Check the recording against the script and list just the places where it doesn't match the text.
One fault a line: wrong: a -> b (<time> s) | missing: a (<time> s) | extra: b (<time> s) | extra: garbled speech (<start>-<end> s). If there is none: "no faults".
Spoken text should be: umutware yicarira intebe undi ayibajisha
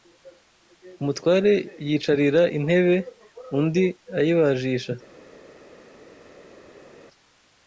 no faults